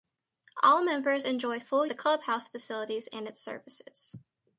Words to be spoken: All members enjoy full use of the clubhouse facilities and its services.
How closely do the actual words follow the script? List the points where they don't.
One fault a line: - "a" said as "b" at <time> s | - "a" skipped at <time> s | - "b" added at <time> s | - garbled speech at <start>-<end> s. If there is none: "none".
- "use of" skipped at 1.9 s